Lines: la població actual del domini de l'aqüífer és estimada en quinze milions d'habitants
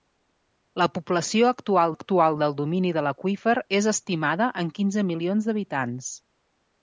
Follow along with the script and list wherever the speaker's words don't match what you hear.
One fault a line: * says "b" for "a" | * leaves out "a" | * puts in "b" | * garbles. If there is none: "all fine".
* puts in "actual"